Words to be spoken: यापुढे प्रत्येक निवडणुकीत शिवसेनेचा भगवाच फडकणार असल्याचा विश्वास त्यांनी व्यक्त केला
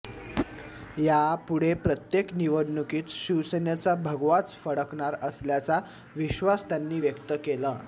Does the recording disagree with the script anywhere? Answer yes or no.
no